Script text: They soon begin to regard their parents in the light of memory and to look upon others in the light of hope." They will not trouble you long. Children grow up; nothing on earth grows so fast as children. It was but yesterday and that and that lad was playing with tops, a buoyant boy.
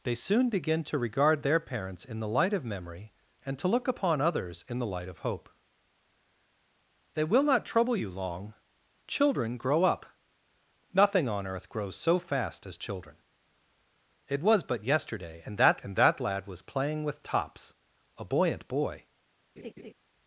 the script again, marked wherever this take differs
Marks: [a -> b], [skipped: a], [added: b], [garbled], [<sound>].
They soon begin to regard their parents in the light of memory and to look upon others in the light of hope." They will not trouble you long. Children grow up; nothing on earth grows so fast as children. It was but yesterday and that and that lad was playing with tops, a buoyant boy. [laugh]